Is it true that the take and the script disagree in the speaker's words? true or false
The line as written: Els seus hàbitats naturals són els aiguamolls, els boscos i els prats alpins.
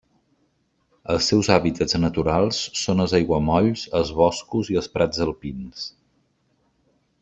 false